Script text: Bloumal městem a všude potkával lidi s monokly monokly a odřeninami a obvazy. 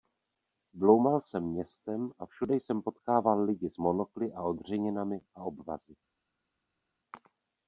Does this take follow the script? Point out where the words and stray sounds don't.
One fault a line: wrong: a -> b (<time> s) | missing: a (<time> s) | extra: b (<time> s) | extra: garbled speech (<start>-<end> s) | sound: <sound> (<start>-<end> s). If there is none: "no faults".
extra: jsem (1.2 s)
extra: jsem (2.6 s)
missing: monokly (4.3 s)